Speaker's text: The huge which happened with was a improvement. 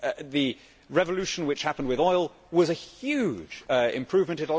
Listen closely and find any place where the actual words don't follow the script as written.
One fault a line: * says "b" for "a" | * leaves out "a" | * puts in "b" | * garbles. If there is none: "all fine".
* says "revolution" for "huge"
* puts in "oil"
* puts in "huge"